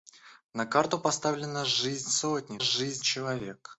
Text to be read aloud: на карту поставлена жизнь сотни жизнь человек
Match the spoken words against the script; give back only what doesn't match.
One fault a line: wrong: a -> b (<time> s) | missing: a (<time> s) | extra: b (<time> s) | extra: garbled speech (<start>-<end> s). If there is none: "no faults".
no faults